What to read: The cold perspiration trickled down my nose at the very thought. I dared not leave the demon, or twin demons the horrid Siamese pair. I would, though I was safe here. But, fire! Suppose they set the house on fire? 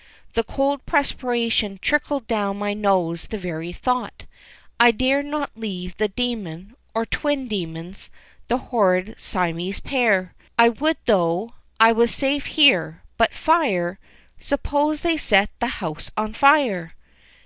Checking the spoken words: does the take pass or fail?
fail